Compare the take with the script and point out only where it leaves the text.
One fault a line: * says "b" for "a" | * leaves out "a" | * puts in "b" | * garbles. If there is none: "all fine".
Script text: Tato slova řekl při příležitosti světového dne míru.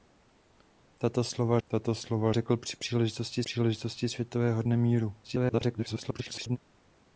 * puts in "tato slova"
* puts in "příležitosti"
* garbles